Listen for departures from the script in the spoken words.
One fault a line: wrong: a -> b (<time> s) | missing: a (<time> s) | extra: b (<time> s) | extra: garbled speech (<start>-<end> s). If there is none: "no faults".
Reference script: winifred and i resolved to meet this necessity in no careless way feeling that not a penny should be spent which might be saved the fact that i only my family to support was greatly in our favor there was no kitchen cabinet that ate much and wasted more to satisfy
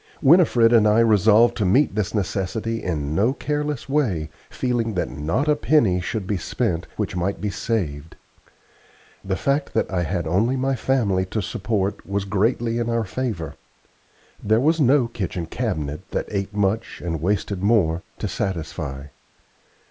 extra: had (10.0 s)